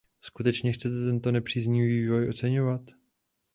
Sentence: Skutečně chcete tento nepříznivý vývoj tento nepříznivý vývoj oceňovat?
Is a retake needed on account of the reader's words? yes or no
yes